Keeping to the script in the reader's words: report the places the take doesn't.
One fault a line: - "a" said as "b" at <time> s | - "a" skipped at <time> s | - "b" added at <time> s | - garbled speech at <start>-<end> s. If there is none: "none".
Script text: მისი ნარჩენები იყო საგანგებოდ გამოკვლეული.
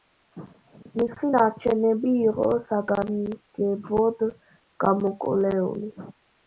none